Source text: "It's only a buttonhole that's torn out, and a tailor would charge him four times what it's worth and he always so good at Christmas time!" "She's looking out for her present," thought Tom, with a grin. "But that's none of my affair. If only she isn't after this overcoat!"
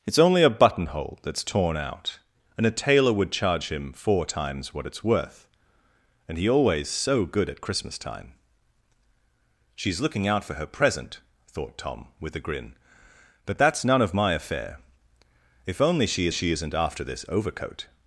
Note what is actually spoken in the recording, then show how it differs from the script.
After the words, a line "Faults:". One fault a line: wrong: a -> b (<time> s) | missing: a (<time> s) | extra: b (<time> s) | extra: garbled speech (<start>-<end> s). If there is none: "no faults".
"It's only a buttonhole that's torn out, and a tailor would charge him four times what it's worth and he always so good at Christmas time!" "She's looking out for her present," thought Tom, with a grin. "But that's none of my affair. If only she she isn't after this overcoat!"
Faults:
extra: she (16.3 s)